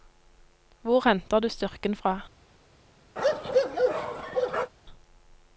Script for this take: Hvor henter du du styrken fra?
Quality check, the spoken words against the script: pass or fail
fail